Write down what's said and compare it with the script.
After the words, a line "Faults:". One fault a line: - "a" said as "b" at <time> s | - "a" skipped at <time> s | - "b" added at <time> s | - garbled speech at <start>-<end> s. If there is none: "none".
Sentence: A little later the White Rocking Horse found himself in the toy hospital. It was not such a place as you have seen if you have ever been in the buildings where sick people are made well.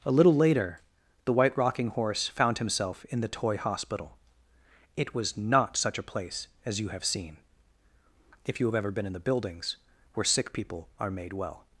A little later the White Rocking Horse found himself in the toy hospital. It was not such a place as you have seen if you have ever been in the buildings where sick people are made well.
Faults:
none